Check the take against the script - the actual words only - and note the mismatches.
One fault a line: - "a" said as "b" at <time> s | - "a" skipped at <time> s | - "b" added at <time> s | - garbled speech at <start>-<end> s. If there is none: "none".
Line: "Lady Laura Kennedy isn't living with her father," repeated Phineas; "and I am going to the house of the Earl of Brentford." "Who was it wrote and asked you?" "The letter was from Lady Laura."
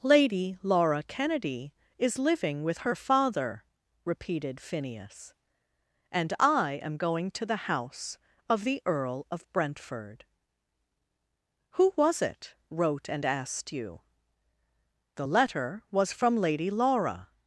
- "isn't" said as "is" at 2.0 s